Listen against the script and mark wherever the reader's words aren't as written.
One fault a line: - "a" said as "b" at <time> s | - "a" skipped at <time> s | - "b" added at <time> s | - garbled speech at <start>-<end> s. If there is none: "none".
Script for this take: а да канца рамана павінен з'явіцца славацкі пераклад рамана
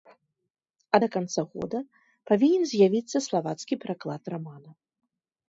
- "рамана" said as "года" at 1.5 s